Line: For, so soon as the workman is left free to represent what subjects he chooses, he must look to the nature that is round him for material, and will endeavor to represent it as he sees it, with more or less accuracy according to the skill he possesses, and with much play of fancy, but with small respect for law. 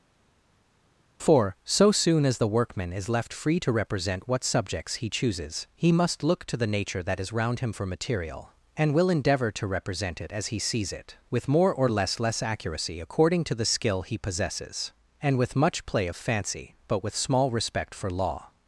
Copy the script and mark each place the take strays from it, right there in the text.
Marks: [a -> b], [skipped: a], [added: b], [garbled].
For, so soon as the workman is left free to represent what subjects he chooses, he must look to the nature that is round him for material, and will endeavor to represent it as he sees it, with more or less [added: less] accuracy according to the skill he possesses, and with much play of fancy, but with small respect for law.